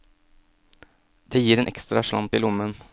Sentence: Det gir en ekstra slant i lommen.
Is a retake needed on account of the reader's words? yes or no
no